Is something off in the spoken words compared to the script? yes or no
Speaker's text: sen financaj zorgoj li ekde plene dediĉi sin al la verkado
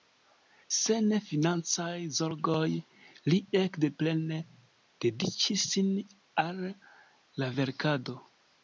no